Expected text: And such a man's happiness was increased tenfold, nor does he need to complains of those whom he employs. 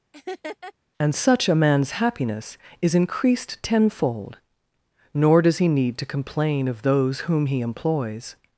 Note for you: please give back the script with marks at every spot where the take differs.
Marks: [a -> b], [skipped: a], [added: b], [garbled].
And such a man's happiness [was -> is] increased tenfold, nor does he need to [complains -> complain] of those whom he employs.